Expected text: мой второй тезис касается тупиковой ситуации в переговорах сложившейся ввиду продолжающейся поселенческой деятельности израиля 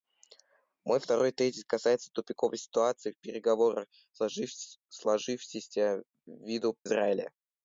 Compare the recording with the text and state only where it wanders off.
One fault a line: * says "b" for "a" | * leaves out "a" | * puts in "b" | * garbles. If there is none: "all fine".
* leaves out "продолжающейся поселенческой деятельности"